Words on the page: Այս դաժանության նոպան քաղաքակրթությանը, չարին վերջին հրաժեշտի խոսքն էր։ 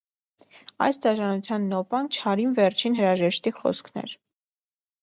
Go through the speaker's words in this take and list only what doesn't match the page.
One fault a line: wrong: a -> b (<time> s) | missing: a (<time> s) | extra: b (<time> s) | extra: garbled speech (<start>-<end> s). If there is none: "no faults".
missing: քաղաքակրթությանը (2.1 s)